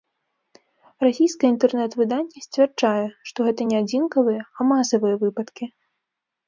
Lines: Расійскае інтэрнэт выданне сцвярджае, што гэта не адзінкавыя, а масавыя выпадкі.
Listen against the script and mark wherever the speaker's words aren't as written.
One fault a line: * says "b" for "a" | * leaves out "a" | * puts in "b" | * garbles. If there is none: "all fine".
all fine